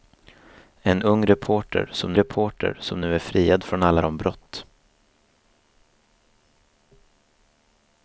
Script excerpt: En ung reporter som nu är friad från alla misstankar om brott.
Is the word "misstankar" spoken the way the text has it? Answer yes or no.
no